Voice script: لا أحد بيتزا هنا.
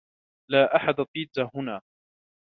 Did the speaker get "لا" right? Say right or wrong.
right